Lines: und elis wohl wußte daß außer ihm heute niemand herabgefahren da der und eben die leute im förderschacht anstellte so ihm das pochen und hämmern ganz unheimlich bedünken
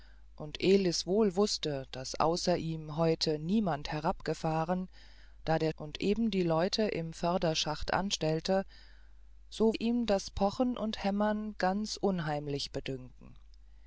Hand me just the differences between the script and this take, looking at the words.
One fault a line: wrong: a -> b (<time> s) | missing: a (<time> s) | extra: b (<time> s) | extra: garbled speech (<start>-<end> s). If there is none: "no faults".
no faults